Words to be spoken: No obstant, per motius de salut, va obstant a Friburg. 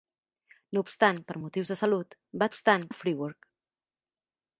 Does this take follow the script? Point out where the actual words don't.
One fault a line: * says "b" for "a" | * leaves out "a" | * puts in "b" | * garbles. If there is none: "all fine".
all fine